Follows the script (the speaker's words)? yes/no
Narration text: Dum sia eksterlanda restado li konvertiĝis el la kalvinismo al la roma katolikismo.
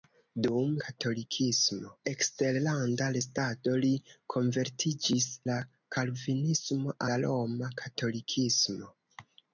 no